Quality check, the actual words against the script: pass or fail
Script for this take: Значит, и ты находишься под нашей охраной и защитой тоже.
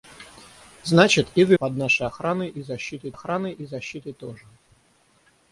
fail